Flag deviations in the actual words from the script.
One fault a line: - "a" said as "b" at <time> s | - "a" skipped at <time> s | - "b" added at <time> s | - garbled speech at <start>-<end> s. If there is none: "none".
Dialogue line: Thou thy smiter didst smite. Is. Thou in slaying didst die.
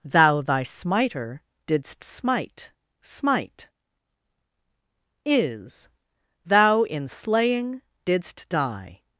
- "smite" added at 3.0 s